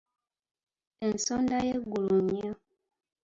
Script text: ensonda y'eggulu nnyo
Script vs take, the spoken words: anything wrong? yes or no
no